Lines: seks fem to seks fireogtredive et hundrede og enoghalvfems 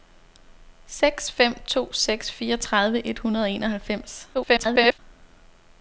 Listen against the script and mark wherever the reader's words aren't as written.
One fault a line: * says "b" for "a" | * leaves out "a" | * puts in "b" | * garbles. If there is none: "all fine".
* garbles